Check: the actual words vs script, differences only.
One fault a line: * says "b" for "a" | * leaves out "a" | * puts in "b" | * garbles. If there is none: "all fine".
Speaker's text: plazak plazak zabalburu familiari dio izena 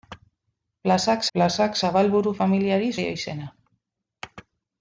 all fine